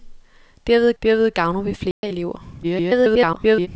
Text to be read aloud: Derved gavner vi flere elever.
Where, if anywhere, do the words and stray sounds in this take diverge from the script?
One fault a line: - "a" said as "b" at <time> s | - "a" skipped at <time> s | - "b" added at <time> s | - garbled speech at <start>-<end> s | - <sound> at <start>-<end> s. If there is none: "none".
- "derved" added at 1.0 s
- dropout at 1.9-2.0 s
- garbled speech at 2.6-3.7 s